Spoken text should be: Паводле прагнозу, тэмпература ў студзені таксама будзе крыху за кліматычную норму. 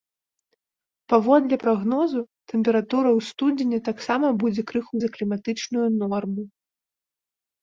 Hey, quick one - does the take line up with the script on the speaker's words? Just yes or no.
yes